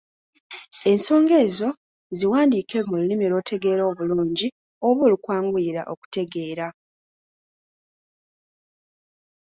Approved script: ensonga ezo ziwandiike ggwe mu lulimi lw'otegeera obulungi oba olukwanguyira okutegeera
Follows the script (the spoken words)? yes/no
no